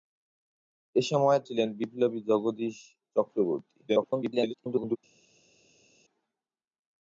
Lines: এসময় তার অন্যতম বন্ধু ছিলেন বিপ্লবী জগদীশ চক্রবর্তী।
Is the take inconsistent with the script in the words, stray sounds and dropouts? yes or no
yes